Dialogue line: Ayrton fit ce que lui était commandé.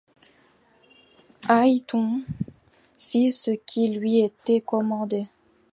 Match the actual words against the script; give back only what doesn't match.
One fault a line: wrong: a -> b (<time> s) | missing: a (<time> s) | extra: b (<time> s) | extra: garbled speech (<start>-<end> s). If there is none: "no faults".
wrong: que -> qui (3.5 s)